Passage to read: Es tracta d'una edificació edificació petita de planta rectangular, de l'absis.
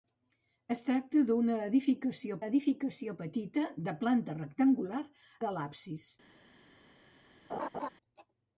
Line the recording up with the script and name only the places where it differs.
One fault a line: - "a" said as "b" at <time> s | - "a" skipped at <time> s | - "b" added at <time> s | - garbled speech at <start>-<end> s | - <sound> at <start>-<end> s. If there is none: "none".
- laugh at 7.5-7.9 s